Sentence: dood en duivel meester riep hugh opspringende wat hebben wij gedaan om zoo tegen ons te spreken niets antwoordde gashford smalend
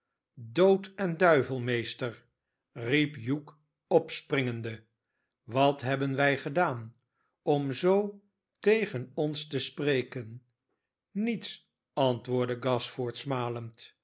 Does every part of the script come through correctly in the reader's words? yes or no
yes